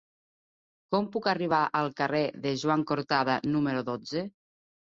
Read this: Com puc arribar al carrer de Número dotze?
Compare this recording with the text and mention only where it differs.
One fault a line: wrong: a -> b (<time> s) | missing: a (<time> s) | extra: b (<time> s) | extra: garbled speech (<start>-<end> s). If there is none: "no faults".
extra: Joan Cortada (2.6 s)